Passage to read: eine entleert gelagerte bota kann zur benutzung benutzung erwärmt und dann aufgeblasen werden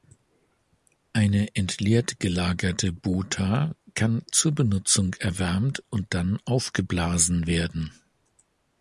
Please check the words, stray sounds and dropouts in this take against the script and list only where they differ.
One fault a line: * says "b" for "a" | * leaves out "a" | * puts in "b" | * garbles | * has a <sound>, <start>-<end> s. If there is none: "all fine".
* leaves out "benutzung"